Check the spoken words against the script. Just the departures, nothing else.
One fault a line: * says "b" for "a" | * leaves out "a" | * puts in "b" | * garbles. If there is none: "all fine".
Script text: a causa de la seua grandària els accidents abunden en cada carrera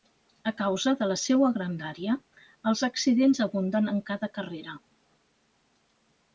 all fine